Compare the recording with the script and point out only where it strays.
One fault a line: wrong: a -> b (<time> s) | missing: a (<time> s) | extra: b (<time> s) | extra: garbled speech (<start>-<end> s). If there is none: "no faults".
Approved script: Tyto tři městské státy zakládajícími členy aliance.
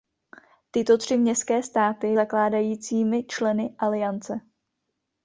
no faults